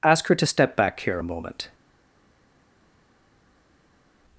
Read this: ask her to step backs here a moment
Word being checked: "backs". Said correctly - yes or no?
no